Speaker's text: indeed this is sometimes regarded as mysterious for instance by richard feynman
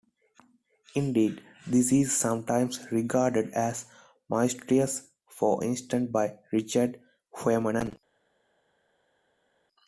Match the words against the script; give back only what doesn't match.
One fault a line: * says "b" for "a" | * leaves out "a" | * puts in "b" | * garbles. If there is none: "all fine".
all fine